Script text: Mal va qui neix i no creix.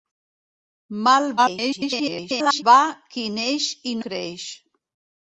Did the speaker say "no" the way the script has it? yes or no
no